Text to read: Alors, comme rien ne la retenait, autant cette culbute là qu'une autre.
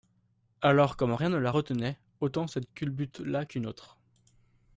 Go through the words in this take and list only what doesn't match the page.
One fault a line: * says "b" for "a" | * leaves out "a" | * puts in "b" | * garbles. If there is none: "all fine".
all fine